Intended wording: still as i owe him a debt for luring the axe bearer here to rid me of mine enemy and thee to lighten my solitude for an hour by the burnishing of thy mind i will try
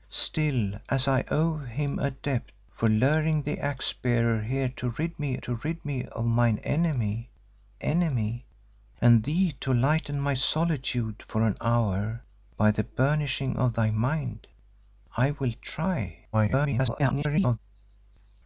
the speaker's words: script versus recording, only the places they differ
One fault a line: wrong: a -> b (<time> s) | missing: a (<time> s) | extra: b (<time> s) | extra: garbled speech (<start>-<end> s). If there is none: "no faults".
extra: to rid me (5.4 s)
extra: enemy (7.8 s)
extra: garbled speech (16.3-17.6 s)